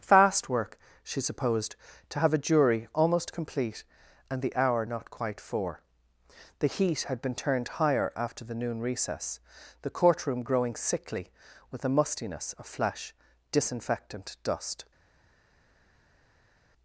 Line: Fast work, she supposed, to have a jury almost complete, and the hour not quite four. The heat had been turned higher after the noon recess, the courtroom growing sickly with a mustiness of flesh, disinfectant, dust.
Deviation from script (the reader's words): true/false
false